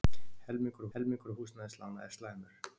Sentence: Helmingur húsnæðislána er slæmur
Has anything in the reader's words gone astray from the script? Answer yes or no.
yes